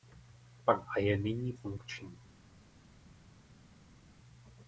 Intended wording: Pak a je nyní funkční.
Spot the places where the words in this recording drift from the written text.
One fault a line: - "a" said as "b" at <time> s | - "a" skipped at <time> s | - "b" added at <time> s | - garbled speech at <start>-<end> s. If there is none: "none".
none